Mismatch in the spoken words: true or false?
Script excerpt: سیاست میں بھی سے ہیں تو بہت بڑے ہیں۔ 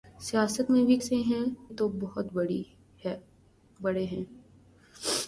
false